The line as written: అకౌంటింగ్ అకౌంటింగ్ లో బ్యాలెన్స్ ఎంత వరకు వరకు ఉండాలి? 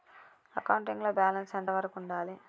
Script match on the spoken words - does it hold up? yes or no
no